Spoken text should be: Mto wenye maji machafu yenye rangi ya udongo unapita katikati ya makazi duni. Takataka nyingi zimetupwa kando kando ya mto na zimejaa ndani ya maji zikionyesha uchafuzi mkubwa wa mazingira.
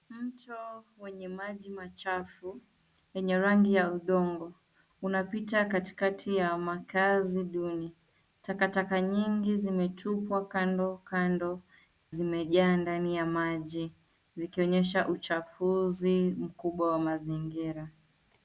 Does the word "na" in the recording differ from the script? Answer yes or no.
yes